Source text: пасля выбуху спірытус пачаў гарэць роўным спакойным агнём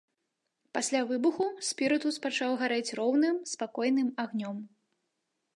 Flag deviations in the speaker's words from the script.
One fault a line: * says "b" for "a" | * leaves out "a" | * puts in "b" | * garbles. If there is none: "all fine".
all fine